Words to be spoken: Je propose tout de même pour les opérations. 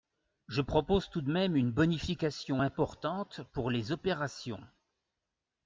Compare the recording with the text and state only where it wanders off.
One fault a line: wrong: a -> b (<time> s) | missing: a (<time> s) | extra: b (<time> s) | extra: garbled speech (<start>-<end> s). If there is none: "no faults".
extra: une bonification importante (1.6 s)